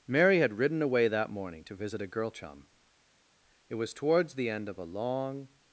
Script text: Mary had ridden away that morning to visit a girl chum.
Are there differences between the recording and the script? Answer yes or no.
yes